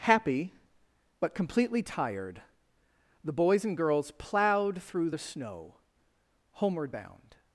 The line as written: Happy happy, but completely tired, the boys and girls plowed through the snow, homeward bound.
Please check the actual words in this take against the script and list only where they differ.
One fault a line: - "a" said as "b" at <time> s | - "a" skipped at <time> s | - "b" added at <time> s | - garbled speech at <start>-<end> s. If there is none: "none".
- "happy" skipped at 0.5 s